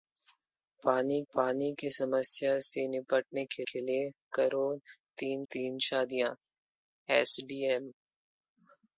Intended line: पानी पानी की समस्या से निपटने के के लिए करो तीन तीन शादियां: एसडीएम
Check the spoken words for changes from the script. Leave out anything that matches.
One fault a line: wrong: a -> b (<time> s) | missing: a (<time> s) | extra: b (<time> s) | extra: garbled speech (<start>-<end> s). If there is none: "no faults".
no faults